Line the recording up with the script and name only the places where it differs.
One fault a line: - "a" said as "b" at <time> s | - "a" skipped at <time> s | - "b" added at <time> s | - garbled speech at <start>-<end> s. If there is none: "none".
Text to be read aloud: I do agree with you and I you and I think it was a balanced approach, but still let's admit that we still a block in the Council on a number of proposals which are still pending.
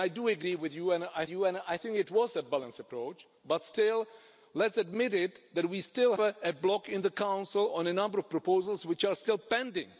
none